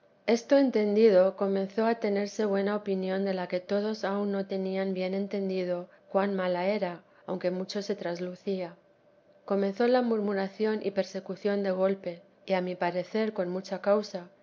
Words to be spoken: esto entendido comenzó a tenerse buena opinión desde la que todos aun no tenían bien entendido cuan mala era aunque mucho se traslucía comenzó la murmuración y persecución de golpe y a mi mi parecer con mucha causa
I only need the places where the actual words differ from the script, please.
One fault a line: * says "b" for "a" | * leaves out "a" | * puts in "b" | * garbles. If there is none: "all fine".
* says "de" for "desde"
* leaves out "mi"